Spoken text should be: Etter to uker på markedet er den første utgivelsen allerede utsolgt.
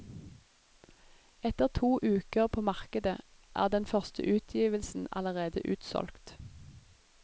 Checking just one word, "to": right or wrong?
right